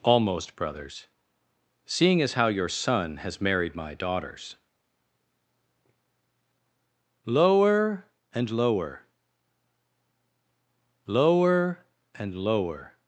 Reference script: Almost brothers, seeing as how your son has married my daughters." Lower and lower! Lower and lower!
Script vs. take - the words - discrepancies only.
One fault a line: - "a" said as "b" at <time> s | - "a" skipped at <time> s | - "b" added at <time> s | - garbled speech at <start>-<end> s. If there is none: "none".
none